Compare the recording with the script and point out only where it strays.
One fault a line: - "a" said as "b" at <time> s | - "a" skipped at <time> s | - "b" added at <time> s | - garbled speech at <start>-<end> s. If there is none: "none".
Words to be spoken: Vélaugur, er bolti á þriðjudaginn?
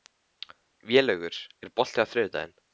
none